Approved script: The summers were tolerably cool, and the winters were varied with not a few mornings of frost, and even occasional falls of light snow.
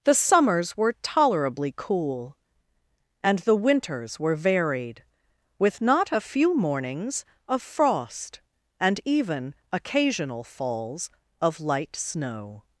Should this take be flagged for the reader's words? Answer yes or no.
no